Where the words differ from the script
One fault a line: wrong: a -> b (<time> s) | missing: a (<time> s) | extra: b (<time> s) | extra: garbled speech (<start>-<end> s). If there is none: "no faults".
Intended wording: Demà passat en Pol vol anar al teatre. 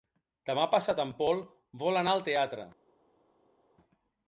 no faults